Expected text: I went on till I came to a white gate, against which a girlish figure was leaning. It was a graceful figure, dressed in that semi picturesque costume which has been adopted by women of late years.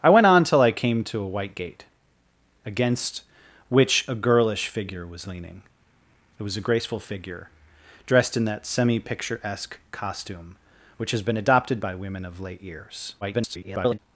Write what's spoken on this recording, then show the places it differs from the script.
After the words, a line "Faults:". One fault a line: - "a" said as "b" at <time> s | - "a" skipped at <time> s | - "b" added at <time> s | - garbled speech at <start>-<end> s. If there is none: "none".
I went on till I came to a white gate, against which a girlish figure was leaning. It was a graceful figure, dressed in that semi picturesque costume which has been adopted by women of late years. [garbled]
Faults:
- garbled speech at 13.2-14.0 s